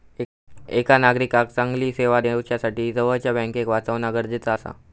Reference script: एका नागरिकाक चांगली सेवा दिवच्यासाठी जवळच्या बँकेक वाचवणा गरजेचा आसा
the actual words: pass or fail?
pass